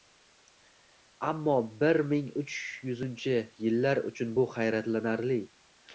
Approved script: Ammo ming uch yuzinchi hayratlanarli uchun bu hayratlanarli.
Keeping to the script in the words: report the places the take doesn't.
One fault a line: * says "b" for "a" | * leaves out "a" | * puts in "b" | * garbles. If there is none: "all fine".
* puts in "bir"
* says "yillar" for "hayratlanarli"